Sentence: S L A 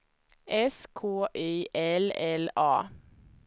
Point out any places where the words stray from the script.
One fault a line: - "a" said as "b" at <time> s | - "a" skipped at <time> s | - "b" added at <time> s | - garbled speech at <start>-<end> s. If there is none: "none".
- "K Y L" added at 0.9 s